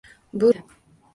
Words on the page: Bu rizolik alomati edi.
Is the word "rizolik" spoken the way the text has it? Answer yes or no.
no